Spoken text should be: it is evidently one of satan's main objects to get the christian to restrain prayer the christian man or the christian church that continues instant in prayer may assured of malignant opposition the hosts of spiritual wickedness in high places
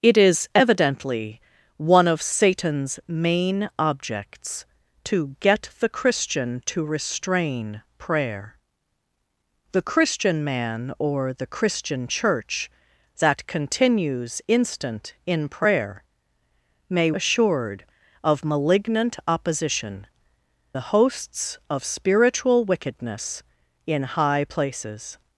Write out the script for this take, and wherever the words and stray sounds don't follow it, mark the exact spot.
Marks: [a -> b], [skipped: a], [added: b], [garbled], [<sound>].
it is evidently one of satan's main objects to get the christian to restrain prayer the christian man or the christian church that continues instant in prayer may assured of malignant opposition the hosts of spiritual wickedness in high places